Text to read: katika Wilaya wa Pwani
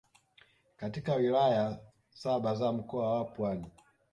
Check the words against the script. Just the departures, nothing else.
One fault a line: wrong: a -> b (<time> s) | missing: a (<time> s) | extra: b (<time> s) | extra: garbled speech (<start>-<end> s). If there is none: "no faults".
extra: saba za Mkoa (2.1 s)